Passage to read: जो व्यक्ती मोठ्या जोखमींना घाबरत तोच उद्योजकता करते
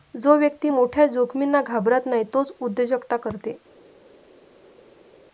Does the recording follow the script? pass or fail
fail